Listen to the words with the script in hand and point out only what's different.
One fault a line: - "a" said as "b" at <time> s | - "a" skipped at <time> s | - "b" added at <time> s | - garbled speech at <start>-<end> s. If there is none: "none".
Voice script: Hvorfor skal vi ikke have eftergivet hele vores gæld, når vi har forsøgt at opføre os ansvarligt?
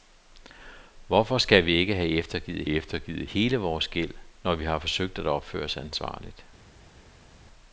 - "eftergivet" added at 2.7 s